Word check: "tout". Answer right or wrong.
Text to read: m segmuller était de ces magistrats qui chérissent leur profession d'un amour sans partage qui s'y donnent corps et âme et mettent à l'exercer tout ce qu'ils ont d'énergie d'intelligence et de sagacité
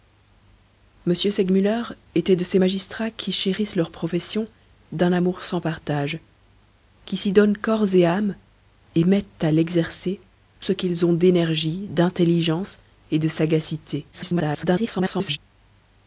wrong